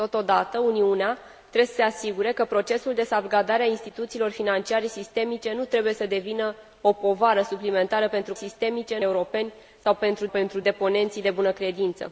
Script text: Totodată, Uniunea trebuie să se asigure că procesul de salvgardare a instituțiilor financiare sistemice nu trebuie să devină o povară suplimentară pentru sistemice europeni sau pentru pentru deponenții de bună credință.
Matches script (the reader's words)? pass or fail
pass